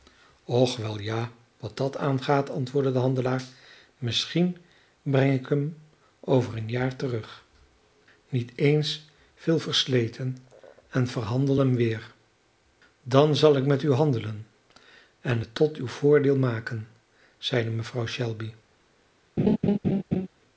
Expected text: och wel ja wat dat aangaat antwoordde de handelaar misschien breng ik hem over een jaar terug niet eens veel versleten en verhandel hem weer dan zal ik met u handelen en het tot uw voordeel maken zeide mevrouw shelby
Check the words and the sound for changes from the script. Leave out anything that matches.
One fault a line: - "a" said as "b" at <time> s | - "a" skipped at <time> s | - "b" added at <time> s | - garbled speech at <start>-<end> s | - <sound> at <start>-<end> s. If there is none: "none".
- laugh at 19.4-20.3 s